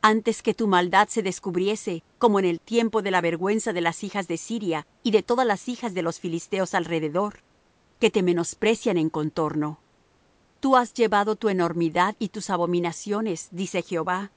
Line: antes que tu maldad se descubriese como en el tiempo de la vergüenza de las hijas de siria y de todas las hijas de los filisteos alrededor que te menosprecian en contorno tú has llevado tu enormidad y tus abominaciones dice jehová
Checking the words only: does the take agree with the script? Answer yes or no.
yes